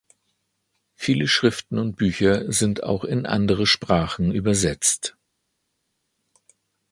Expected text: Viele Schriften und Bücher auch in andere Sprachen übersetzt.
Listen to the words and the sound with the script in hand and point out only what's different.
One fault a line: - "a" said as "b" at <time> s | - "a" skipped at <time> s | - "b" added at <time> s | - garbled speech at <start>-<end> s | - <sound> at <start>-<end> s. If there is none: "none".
- "sind" added at 2.5 s